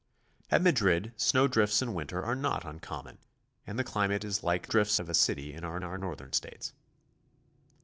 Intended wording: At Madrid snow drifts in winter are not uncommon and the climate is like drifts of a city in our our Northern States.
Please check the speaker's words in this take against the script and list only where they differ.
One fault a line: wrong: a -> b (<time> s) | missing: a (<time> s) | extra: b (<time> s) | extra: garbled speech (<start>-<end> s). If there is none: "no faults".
no faults